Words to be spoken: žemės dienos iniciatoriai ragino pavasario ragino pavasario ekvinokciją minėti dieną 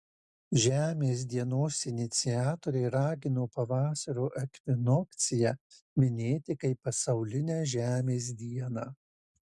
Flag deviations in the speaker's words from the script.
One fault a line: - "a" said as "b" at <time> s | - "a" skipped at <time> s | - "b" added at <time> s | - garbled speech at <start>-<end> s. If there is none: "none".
- "ragino pavasario ekvinokciją minėti" said as "ekvinokciją minėti kaip pasaulinę žemės" at 4.4 s